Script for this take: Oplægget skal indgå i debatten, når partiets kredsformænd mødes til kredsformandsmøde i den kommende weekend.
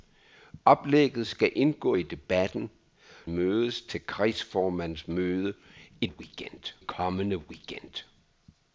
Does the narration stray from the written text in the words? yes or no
yes